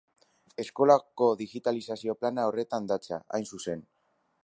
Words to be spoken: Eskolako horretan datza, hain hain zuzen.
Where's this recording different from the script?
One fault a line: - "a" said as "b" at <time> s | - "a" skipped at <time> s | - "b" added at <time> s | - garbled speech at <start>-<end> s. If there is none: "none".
- "digitalizazio plana" added at 1.4 s
- "hain" skipped at 3.5 s